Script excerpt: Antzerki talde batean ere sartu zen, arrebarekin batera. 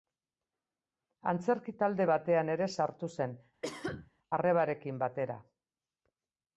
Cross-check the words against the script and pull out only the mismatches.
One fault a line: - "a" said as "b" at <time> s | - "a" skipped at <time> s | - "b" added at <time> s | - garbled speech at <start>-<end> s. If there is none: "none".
none